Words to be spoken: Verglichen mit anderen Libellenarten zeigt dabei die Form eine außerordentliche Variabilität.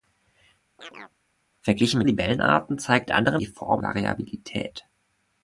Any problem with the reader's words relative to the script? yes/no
yes